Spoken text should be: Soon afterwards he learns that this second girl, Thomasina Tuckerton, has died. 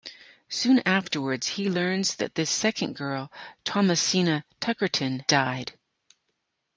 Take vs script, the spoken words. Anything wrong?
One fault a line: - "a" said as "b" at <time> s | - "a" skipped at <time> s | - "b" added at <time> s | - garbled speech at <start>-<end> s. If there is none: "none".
- "has" skipped at 5.2 s